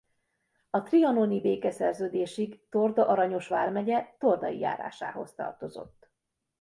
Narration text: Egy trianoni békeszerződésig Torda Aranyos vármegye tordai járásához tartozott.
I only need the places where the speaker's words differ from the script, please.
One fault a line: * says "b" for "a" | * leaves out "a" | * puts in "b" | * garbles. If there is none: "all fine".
* says "A" for "Egy"